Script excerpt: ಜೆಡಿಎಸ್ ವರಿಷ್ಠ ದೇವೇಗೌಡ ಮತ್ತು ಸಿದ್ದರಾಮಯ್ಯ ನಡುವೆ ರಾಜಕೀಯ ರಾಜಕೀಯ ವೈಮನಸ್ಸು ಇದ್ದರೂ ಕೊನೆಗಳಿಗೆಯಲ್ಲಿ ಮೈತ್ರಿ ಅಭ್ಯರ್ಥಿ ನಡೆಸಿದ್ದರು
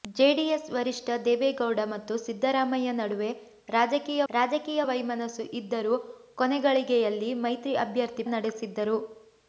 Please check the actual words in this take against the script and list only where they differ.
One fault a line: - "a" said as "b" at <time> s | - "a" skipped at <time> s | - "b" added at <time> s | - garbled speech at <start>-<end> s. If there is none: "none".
none